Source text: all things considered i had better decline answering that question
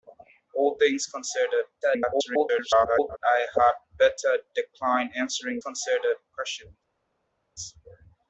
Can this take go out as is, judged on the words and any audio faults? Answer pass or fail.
fail